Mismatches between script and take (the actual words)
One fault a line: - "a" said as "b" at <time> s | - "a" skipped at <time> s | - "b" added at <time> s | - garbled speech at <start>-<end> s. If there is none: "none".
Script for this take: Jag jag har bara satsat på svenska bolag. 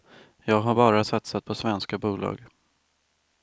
- "jag" skipped at 0.6 s